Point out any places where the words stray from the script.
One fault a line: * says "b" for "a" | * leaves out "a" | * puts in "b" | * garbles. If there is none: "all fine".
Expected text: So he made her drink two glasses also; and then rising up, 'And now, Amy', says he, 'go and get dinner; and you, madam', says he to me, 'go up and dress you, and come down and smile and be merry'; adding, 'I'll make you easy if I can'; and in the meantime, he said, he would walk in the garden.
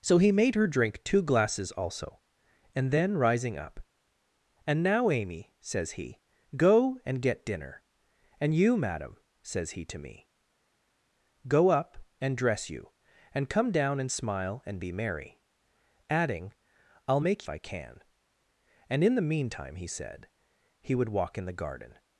* leaves out "you easy if"